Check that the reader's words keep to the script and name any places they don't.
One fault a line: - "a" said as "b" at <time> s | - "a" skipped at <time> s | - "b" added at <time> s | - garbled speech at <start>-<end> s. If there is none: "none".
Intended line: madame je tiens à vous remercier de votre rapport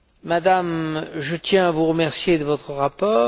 none